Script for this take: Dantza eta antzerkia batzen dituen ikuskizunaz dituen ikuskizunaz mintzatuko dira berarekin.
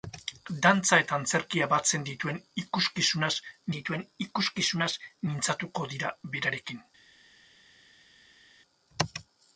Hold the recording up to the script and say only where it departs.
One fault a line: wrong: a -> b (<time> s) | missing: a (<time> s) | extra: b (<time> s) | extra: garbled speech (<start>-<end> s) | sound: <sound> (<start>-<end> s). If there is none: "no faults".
no faults